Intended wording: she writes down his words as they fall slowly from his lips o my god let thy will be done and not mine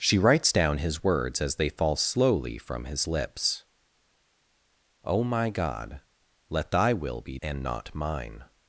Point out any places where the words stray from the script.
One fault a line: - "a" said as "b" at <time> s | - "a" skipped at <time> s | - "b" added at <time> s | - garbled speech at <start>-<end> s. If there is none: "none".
- "done" skipped at 7.4 s